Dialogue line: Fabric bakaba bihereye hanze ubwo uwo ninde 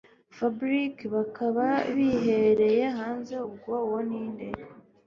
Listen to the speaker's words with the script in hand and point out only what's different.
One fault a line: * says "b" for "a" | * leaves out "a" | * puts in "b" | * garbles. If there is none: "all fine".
all fine